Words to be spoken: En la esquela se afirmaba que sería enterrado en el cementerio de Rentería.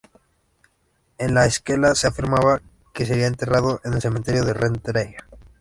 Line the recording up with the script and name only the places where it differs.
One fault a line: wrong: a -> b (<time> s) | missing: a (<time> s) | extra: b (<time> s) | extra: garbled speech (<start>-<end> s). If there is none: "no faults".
no faults